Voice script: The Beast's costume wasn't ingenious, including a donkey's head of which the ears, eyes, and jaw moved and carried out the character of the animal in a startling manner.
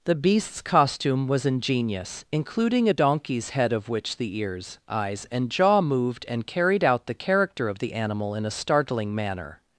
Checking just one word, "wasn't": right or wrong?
wrong